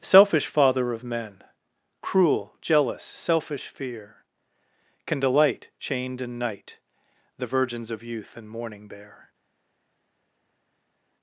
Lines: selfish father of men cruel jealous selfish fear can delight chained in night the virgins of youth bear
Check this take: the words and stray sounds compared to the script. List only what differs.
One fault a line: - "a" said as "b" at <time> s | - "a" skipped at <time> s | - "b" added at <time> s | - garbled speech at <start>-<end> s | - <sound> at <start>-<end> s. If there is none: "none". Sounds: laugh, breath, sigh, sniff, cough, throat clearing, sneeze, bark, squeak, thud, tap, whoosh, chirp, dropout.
- "and morning" added at 8.3 s